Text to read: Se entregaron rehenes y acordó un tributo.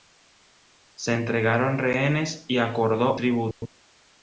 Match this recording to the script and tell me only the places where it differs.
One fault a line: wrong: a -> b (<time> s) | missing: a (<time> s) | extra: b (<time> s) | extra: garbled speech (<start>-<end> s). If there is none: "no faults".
missing: un (3.2 s)